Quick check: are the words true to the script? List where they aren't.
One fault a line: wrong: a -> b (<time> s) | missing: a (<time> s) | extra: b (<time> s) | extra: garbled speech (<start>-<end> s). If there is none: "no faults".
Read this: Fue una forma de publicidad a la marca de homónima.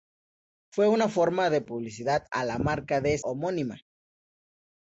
no faults